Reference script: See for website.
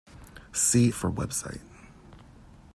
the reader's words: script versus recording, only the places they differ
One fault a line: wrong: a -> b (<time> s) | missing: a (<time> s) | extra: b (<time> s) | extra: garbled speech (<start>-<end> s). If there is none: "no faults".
no faults